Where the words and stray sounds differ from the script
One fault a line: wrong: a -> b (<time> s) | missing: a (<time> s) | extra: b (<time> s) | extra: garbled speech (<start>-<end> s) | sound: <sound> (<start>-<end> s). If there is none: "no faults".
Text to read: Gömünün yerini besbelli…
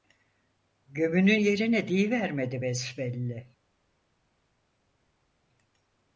extra: diyivermedi (1.9 s)